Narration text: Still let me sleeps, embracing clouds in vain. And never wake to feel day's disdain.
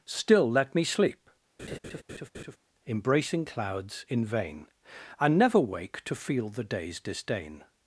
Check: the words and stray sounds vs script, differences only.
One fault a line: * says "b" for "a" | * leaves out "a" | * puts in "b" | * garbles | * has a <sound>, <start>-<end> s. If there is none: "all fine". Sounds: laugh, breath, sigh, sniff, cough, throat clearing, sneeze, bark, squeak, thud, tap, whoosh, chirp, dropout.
* says "sleep" for "sleeps"
* has a laugh, 1.6-2.6 s
* puts in "the"